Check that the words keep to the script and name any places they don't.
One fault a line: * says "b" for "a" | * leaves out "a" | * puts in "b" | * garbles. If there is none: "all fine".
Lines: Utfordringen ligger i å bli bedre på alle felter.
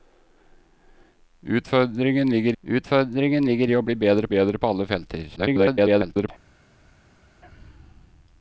* puts in "utfordringen ligger"
* puts in "bedre"
* garbles